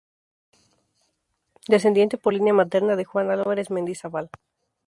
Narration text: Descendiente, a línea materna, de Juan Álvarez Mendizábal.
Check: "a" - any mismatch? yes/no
yes